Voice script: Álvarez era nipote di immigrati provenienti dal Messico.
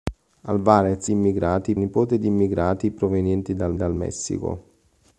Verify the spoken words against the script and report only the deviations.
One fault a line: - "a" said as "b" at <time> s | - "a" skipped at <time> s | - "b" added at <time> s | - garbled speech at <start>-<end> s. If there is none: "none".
- "era" said as "immigrati" at 1.1 s
- "dal" added at 3.8 s